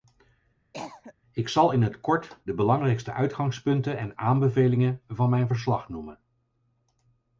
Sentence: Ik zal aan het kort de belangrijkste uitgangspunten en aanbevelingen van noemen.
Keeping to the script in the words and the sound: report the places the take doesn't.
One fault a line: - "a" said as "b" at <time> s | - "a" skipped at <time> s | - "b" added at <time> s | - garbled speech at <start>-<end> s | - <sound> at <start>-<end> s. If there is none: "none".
- cough at 0.7-1.1 s
- "aan" said as "in" at 1.7 s
- "mijn verslag" added at 5.3 s